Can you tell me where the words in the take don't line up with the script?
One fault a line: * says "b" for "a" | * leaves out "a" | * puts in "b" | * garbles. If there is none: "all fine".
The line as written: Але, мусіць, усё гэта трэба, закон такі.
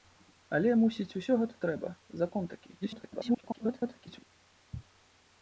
* garbles